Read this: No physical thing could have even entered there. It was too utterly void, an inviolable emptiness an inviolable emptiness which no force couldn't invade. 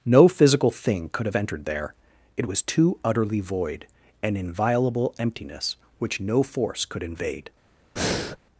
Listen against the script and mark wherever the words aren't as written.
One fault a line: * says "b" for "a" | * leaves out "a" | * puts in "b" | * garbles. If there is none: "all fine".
* leaves out "even"
* leaves out "an inviolable emptiness"
* says "could" for "couldn't"